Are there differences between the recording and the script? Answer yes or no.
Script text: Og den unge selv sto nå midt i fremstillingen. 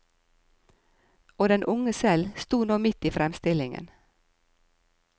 no